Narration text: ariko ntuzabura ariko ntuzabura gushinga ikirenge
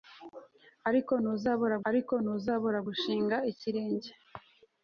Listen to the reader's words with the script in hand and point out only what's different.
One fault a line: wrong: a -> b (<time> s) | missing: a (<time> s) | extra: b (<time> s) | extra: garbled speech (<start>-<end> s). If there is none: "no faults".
no faults